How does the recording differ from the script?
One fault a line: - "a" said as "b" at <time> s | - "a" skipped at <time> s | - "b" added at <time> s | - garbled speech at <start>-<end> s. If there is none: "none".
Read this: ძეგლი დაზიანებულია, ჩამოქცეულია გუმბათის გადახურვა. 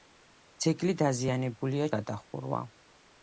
- "ჩამოქცეულია გუმბათის" skipped at 1.9 s